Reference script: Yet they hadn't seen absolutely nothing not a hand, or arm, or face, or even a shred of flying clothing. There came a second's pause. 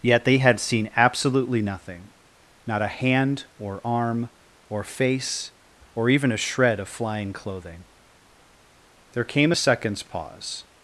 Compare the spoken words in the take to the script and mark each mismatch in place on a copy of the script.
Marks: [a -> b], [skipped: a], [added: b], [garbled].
Yet they [hadn't -> had] seen absolutely nothing not a hand, or arm, or face, or even a shred of flying clothing. There came a second's pause.